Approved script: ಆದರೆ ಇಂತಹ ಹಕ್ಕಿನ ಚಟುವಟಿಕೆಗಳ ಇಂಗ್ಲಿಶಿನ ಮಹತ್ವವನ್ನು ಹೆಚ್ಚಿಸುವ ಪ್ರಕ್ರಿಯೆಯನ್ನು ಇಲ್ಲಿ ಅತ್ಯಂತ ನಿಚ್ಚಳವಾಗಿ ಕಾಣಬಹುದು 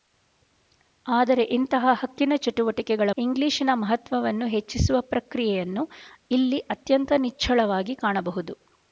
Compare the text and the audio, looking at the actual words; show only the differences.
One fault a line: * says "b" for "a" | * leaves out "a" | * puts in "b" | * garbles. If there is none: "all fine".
all fine